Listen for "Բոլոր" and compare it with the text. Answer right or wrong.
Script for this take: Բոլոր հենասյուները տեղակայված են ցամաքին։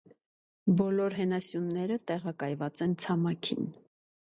right